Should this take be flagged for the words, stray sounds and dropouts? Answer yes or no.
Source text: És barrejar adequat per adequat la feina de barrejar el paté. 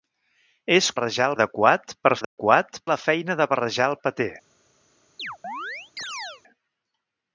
yes